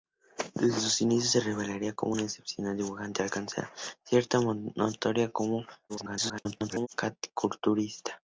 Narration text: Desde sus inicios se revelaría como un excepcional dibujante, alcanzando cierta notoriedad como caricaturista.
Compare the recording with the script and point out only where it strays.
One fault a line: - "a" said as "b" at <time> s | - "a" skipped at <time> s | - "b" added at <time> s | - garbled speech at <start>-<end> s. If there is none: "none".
- garbled speech at 5.9-6.9 s